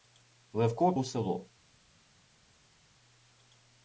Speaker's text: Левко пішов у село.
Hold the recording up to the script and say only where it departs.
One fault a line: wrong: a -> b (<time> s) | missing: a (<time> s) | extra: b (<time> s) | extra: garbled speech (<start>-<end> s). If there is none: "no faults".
missing: пішов (0.9 s)